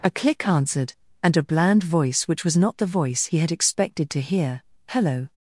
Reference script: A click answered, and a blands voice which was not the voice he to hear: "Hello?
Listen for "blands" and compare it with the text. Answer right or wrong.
wrong